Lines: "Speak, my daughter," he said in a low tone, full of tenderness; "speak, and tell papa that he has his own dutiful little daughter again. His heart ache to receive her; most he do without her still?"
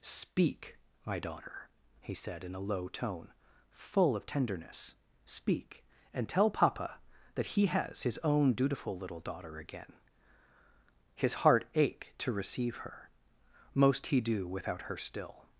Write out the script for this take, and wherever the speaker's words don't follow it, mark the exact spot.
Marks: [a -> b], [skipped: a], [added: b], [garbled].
"Speak, my daughter," he said in a low tone, full of tenderness; "speak, and tell papa that he has his own dutiful little daughter again. His heart ache to receive her; most he do without her still?"